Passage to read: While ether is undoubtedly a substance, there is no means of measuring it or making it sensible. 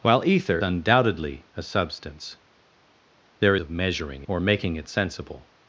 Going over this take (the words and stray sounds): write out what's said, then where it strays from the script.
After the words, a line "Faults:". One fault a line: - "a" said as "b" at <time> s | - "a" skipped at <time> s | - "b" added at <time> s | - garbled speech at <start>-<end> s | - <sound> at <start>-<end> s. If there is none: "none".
While ether undoubtedly a substance, there of measuring or making it sensible.
Faults:
- "is" skipped at 0.6 s
- "is no means" skipped at 3.6 s
- "it" skipped at 4.2 s